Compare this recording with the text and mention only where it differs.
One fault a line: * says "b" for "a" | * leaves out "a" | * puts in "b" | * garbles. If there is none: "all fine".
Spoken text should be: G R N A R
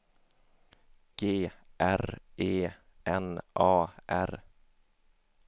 * puts in "E"